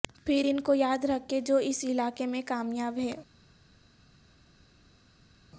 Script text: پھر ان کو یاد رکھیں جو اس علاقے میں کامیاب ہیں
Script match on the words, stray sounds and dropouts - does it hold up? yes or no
yes